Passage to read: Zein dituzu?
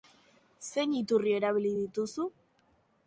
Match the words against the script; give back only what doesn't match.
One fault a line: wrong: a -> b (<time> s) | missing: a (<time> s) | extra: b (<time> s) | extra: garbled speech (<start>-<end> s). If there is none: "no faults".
extra: iturri erabili (1.0 s)